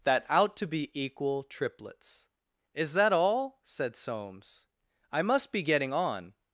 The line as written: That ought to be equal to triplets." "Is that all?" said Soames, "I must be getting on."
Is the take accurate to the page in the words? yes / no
no